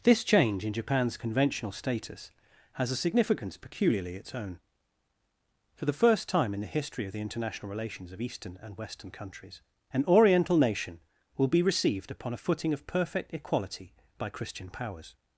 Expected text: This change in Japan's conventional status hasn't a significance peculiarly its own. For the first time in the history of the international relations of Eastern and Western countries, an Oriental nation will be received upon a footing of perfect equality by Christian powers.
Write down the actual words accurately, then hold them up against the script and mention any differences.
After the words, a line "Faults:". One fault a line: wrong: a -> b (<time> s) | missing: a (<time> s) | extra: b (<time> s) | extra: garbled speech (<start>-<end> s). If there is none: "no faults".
This change in Japan's conventional status has a significance peculiarly its own. For the first time in the history of the international relations of Eastern and Western countries, an Oriental nation will be received upon a footing of perfect equality by Christian powers.
Faults:
wrong: hasn't -> has (2.7 s)